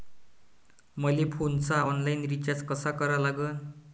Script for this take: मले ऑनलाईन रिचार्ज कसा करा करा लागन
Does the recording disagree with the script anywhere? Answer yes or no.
yes